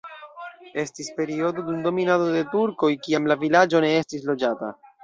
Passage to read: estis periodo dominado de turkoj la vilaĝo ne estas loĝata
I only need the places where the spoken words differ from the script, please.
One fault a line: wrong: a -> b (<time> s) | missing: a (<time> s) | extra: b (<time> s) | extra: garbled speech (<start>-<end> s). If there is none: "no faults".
extra: dum (1.7 s)
extra: kiam (3.1 s)
wrong: estas -> estis (4.0 s)